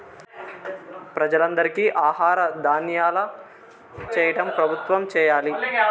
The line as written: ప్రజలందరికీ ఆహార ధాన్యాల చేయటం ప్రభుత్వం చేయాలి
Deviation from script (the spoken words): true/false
false